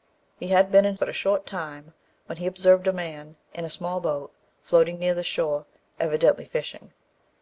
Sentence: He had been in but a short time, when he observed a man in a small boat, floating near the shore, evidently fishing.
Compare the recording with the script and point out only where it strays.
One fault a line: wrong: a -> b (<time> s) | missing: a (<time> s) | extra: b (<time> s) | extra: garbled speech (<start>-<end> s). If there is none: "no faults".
no faults